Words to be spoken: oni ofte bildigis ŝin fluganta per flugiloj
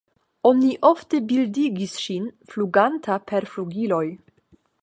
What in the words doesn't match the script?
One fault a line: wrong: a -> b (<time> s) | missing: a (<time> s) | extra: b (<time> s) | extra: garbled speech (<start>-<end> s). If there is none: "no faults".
no faults